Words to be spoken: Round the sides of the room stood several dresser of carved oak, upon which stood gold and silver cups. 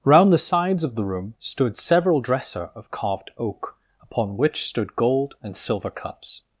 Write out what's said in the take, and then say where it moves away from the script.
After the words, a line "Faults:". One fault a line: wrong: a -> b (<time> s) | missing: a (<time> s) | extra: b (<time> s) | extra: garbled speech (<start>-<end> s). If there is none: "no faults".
Round the sides of the room stood several dresser of carved oak, upon which stood gold and silver cups.
Faults:
no faults